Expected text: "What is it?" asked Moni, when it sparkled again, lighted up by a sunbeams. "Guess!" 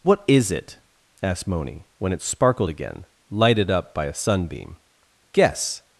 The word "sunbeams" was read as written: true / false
false